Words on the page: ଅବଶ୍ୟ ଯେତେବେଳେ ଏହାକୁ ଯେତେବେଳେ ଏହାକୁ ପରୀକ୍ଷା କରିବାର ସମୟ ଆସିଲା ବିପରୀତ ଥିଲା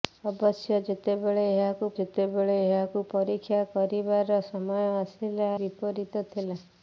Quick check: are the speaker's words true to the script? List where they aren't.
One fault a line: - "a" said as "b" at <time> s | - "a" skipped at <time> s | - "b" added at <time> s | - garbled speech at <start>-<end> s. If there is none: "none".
none